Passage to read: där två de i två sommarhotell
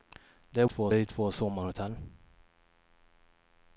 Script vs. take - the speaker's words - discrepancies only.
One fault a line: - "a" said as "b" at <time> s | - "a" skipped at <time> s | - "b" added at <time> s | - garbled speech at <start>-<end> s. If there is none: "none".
none